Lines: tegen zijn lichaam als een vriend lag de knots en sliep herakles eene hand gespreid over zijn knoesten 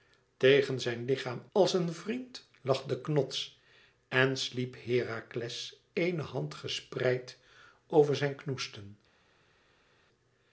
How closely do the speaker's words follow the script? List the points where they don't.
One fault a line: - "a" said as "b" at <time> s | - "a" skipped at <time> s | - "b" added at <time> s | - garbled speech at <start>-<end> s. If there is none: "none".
none